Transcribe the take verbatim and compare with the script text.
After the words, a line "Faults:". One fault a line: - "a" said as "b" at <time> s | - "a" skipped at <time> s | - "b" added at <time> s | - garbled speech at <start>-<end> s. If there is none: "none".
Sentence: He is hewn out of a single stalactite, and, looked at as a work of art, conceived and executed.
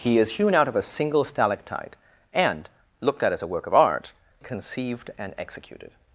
He is hewn out of a single stalactite, and, looked at as a work of art, conceived and executed.
Faults:
none